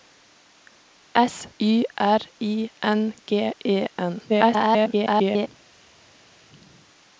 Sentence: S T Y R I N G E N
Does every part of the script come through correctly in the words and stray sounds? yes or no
no